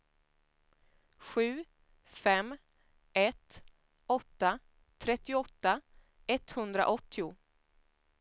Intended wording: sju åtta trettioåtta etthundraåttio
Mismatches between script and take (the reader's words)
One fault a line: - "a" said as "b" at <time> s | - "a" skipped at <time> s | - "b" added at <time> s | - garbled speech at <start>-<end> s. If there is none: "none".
- "fem ett" added at 2.0 s